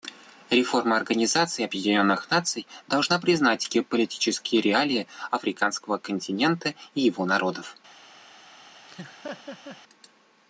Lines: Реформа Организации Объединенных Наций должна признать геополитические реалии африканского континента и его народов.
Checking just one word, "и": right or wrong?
right